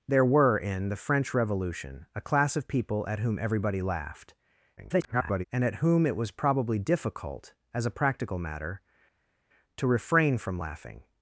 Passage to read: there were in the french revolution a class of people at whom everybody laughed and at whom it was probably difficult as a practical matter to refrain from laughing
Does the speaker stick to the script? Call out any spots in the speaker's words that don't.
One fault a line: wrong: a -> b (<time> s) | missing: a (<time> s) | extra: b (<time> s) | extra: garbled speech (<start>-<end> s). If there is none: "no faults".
extra: garbled speech (4.8-5.4 s)